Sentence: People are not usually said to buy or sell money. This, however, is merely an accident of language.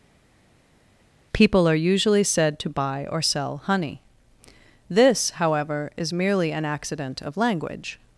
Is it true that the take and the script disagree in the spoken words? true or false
true